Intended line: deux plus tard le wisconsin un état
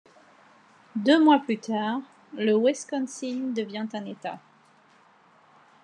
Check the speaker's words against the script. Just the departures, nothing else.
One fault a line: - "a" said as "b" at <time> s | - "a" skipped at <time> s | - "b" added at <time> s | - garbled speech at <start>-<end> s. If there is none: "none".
- "mois" added at 1.2 s
- "devient" added at 3.5 s